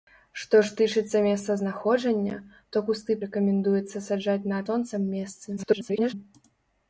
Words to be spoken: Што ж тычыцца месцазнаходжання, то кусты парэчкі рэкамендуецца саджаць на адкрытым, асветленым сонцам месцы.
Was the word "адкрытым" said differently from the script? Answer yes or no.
yes